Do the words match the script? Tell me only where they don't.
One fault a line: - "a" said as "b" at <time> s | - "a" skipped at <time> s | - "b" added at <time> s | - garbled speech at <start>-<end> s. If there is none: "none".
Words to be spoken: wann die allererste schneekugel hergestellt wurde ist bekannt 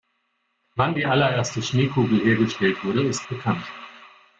none